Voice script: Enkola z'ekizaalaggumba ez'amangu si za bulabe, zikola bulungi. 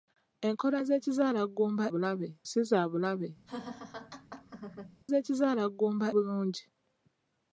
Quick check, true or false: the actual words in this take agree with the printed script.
false